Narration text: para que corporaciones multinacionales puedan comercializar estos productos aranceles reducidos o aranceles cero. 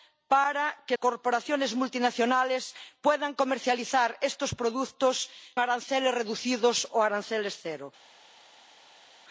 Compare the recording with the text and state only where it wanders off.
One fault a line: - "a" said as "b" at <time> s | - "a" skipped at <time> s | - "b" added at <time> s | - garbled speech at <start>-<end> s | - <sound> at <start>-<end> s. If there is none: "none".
none